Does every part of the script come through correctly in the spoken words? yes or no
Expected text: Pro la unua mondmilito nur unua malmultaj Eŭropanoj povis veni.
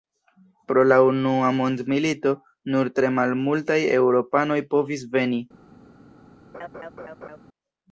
no